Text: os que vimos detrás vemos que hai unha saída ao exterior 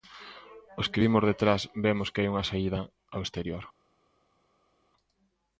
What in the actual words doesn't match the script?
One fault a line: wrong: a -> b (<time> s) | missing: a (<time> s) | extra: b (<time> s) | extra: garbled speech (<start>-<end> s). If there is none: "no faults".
no faults